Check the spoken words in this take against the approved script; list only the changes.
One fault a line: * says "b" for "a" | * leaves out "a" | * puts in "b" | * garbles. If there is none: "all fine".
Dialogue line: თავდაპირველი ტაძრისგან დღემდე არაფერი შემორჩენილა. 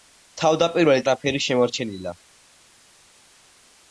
* leaves out "ტაძრისგან დღემდე"